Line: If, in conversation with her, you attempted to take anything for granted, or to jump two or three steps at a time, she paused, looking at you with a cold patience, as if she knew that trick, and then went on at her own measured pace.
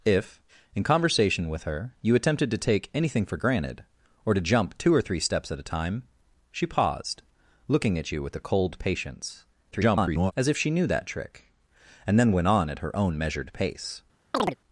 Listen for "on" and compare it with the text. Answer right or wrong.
right